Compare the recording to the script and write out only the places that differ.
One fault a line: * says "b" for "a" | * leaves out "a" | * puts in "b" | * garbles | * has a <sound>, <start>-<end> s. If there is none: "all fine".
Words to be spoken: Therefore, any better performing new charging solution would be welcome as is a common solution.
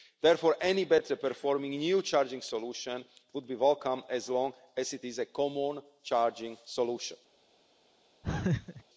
* puts in "long as it"
* puts in "charging"
* has a laugh, 8.2-8.8 s